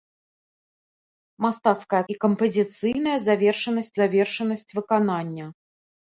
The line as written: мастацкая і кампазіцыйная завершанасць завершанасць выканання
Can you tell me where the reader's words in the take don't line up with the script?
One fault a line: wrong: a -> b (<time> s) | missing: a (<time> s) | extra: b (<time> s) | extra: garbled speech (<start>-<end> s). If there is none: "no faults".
no faults